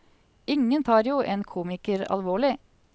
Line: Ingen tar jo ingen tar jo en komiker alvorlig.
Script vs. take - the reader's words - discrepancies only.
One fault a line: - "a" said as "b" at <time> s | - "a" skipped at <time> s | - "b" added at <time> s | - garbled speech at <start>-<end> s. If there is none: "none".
- "ingen tar jo" skipped at 1.2 s